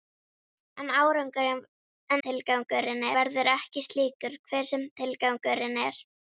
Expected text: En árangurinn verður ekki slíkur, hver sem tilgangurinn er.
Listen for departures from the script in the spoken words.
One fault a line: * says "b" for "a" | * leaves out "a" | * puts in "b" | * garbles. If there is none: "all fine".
* says "tilgangurinn" for "árangurinn"